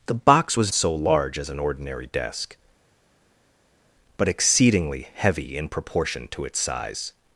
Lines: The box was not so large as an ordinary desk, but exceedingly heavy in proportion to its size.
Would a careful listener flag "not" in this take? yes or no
yes